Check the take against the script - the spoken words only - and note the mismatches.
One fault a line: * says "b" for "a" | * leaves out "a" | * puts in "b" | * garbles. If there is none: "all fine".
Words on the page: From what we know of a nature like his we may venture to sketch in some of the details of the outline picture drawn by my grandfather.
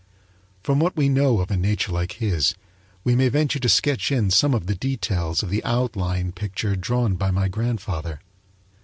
all fine